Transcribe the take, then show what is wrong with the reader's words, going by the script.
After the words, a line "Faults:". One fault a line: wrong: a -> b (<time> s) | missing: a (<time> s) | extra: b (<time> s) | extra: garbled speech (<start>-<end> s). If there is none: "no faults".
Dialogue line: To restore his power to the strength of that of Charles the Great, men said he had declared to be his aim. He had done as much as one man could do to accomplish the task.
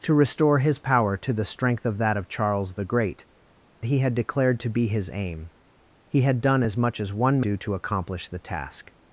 To restore his power to the strength of that of Charles the Great, he had declared to be his aim. He had done as much as one do to accomplish the task.
Faults:
missing: men said (3.3 s)
missing: man could (7.4 s)